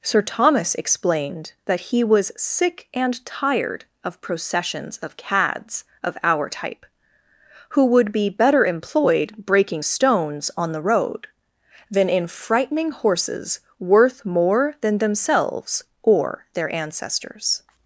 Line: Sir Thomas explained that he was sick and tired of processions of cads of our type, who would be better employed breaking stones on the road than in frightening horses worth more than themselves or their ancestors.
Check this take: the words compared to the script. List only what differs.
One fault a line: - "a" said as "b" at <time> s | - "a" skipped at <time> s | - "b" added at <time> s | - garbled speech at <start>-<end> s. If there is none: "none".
none